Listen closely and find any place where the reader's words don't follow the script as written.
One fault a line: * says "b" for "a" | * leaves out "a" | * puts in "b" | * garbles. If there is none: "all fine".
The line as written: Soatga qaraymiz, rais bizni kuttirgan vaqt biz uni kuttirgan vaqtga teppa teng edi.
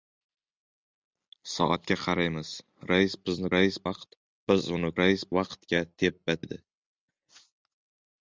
* says "rais" for "kuttirgan"
* says "rais" for "kuttirgan"
* leaves out "teng"